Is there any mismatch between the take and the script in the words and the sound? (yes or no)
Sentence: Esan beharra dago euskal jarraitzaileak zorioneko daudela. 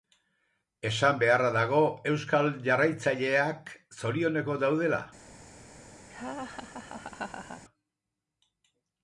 yes